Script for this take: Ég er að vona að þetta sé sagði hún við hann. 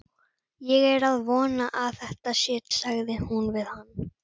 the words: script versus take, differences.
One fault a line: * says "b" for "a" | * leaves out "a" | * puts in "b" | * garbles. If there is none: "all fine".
all fine